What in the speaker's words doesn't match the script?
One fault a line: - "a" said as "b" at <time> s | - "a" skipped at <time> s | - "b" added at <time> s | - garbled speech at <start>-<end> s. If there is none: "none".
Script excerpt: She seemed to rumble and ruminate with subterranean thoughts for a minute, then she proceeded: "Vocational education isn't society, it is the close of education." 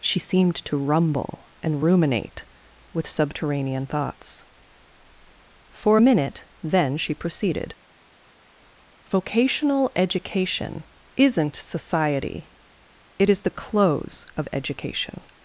none